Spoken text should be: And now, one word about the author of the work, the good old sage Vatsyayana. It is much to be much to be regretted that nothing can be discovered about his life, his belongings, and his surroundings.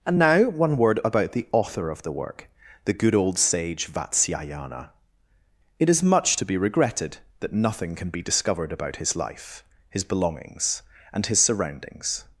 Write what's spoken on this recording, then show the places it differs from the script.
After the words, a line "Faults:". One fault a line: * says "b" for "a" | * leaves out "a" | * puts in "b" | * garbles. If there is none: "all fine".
And now, one word about the author of the work, the good old sage Vatsyayana. It is much to be regretted that nothing can be discovered about his life, his belongings, and his surroundings.
Faults:
* leaves out "much to be"